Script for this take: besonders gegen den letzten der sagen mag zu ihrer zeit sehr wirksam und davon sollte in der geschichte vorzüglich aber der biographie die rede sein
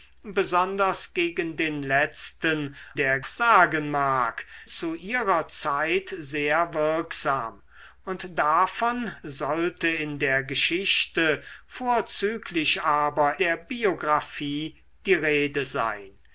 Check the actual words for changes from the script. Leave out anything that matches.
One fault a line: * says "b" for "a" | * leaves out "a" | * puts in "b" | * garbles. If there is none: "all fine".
all fine